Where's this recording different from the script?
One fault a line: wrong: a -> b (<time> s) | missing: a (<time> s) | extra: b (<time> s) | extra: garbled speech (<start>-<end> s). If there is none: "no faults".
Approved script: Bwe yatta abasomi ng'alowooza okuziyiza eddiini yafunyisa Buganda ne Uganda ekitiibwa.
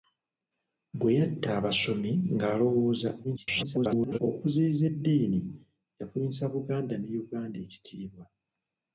extra: garbled speech (3.2-4.2 s)